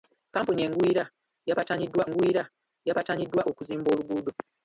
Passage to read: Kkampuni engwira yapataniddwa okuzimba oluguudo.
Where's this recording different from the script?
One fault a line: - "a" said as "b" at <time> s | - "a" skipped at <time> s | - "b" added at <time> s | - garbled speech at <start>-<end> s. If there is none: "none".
- "engwira yapataniddwa" added at 2.1 s